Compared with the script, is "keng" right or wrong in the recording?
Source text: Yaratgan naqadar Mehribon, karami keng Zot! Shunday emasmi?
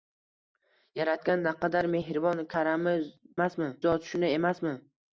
wrong